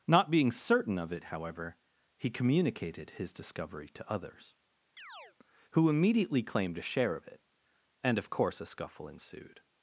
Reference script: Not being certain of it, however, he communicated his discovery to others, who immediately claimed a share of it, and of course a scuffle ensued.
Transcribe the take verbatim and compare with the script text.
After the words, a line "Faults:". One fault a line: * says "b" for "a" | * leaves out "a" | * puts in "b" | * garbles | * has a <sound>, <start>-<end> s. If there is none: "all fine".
Not being certain of it, however, he communicated his discovery to others, who immediately claimed a share of it, and of course a scuffle ensued.
Faults:
* has a chirp, 5.0-5.4 s